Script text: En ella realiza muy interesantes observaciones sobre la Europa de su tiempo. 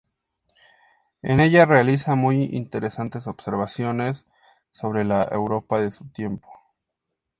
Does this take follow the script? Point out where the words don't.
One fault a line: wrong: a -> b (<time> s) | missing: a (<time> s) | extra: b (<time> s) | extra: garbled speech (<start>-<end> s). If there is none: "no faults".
no faults